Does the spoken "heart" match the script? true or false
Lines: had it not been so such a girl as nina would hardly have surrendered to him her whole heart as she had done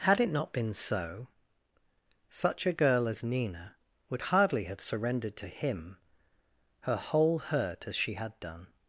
false